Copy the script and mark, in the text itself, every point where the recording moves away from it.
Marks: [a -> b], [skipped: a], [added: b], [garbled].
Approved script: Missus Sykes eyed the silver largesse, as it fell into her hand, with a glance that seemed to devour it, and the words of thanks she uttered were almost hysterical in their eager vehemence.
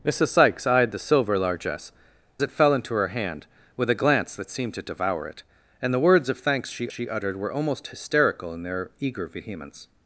Missus Sykes eyed the silver largesse, [skipped: as] it fell into her hand, with a glance that seemed to devour it, and the words of thanks she [added: she] uttered were almost hysterical in their eager vehemence.